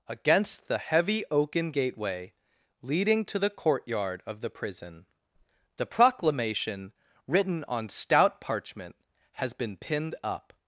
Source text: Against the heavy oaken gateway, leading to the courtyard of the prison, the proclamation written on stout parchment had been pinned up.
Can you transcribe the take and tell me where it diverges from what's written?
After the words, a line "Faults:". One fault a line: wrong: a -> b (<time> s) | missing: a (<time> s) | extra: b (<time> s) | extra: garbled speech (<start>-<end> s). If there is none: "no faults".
Against the heavy oaken gateway, leading to the courtyard of the prison, the proclamation written on stout parchment has been pinned up.
Faults:
wrong: had -> has (9.3 s)